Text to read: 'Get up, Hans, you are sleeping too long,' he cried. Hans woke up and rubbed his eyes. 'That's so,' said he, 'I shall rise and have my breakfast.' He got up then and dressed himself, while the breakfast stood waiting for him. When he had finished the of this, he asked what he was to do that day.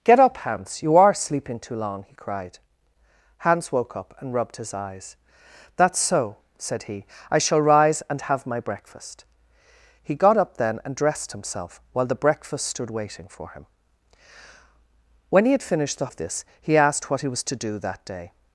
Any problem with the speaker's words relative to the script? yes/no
no